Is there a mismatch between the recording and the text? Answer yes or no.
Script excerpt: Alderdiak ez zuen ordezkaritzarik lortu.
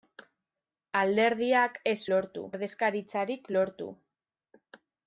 yes